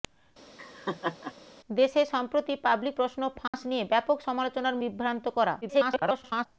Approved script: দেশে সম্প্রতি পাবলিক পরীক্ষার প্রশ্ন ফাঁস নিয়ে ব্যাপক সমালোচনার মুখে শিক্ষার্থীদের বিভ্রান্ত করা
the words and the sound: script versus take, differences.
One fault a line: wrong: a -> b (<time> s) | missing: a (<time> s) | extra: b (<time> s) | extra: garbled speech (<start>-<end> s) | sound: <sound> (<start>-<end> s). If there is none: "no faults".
sound: laugh (0.6-1.3 s)
missing: পরীক্ষার (2.9 s)
sound: dropout (3.5-3.5 s)
missing: মুখে শিক্ষার্থীদের (4.8 s)
extra: garbled speech (5.6-6.5 s)